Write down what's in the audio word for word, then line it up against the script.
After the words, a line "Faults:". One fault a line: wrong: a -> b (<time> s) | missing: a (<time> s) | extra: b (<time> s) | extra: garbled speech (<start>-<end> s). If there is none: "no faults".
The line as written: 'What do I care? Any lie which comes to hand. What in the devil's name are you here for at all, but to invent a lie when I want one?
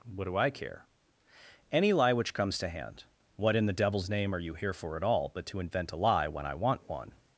'What do I care? Any lie which comes to hand. What in the devil's name are you here for at all, but to invent a lie when I want one?
Faults:
no faults